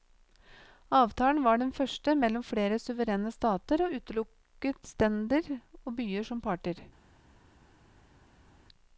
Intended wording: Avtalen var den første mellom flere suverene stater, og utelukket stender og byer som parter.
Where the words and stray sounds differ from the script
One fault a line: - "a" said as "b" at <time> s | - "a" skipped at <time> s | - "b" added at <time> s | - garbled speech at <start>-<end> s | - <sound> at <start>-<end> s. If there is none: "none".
none